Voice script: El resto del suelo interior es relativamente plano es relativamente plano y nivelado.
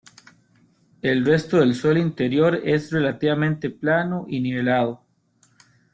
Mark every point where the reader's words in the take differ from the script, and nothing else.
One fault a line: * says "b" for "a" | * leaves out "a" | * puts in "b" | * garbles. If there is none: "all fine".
* leaves out "es relativamente plano"